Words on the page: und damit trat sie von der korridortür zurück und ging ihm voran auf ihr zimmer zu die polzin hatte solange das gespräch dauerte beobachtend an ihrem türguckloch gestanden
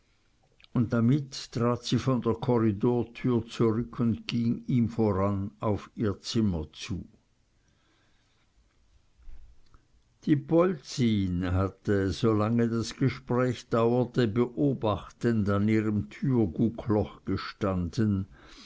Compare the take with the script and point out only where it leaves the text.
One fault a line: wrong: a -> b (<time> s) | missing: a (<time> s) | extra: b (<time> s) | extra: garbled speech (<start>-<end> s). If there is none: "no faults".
no faults